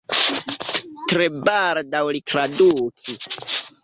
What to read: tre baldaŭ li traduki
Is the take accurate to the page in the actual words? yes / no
yes